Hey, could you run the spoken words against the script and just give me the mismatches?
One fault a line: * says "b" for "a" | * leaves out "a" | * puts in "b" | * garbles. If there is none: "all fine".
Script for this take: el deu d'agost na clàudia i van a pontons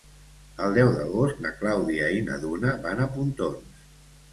* puts in "na duna"